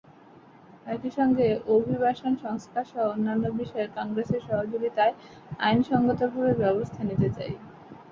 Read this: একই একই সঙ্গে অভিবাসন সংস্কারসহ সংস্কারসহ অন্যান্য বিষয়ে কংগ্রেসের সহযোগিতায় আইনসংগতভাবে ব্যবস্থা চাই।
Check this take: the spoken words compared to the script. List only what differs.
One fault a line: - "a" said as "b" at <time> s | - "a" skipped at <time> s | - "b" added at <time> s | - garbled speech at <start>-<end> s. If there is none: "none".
- "একই" skipped at 1.1 s
- "সংস্কারসহ" skipped at 3.0 s
- "নিতে" added at 7.1 s